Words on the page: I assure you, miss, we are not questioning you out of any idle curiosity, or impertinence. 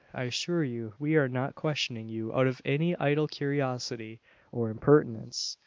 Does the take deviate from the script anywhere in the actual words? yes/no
yes